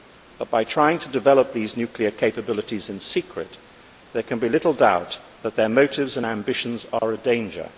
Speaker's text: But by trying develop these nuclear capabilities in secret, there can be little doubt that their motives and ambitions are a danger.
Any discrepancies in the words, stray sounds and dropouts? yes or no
yes